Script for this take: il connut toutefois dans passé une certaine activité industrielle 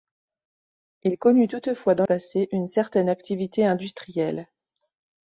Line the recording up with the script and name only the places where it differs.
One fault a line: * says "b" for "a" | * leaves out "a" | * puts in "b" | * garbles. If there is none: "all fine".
all fine